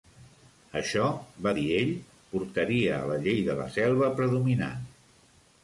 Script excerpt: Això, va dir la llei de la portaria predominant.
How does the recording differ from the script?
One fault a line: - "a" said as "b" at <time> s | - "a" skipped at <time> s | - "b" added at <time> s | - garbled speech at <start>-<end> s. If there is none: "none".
- "ell portaria a" added at 1.8 s
- "portaria" said as "selva" at 3.8 s